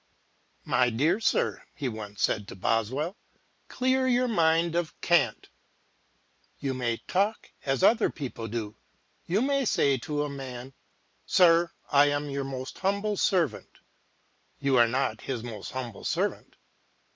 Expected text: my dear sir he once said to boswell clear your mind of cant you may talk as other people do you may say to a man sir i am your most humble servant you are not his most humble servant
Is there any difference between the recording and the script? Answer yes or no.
no